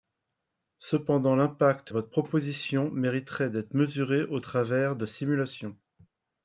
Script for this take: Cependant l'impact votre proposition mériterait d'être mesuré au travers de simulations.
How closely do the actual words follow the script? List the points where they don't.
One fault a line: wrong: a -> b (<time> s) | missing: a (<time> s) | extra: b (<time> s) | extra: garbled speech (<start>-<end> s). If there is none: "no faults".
no faults